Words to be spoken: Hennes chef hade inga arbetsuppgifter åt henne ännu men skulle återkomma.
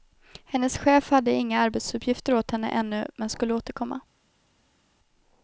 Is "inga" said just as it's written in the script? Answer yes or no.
yes